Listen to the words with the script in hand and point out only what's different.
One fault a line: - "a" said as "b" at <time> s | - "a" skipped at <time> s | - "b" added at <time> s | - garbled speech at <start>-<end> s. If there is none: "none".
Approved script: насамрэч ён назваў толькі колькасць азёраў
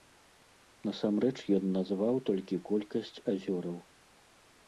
none